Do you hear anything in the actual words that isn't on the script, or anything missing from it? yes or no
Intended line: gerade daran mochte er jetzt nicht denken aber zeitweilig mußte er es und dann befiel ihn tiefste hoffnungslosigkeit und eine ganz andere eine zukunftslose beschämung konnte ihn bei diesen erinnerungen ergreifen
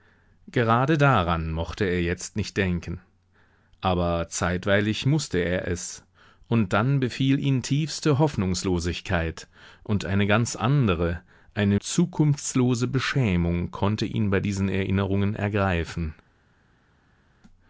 no